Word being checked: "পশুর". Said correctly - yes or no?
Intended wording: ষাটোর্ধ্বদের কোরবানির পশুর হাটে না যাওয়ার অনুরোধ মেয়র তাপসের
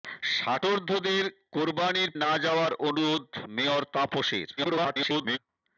no